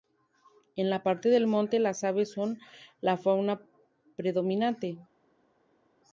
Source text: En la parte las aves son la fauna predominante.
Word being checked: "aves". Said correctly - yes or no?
yes